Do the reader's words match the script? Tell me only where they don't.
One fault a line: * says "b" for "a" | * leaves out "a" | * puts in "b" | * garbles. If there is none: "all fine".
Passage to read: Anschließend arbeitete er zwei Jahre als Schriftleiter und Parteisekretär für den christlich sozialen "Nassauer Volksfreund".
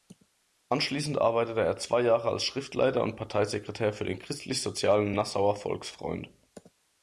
all fine